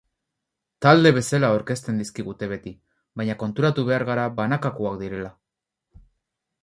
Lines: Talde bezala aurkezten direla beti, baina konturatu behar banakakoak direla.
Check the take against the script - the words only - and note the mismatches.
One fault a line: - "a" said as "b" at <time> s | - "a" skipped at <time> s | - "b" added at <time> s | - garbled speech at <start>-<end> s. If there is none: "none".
- "direla" said as "dizkigute" at 2.0 s
- "gara" added at 4.1 s